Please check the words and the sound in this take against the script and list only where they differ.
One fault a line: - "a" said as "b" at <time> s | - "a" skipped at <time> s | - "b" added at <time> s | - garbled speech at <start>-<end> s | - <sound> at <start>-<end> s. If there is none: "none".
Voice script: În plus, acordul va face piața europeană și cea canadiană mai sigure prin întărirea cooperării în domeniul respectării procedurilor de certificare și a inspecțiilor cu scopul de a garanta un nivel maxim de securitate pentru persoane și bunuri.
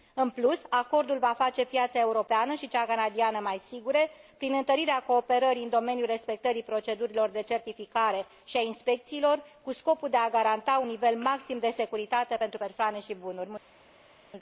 none